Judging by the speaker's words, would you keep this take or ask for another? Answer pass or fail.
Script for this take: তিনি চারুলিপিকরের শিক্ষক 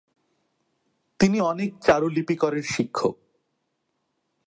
fail